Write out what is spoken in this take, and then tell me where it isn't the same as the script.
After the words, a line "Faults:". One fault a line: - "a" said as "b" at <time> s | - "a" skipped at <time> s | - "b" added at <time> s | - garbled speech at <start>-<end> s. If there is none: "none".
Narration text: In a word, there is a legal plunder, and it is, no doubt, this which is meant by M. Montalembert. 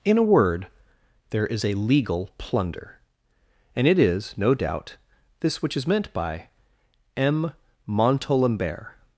In a word, there is a legal plunder, and it is, no doubt, this which is meant by M. Montalembert.
Faults:
none